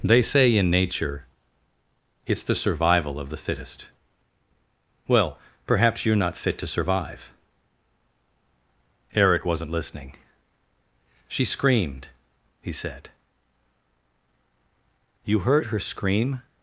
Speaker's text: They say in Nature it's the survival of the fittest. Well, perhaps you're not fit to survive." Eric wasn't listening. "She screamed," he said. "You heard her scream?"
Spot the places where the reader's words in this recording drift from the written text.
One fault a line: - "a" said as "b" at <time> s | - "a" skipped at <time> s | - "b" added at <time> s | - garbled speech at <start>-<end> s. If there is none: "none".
none